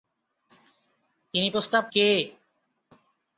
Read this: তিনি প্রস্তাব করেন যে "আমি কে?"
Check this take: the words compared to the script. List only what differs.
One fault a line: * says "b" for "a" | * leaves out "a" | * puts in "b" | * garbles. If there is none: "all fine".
* leaves out "করেন যে আমি"